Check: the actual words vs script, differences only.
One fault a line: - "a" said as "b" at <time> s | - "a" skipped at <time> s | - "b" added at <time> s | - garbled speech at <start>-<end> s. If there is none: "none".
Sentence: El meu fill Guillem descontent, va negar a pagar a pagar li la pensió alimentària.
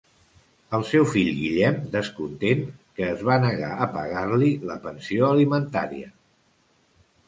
- "meu" said as "seu" at 0.9 s
- "que es" added at 3.0 s
- "a pagar" skipped at 4.3 s